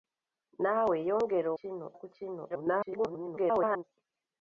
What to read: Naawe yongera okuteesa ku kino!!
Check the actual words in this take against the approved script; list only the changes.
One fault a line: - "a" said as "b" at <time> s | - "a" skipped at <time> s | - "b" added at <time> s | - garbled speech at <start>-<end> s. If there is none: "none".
- "okuteesa" said as "kino" at 1.6 s
- garbled speech at 2.5-3.8 s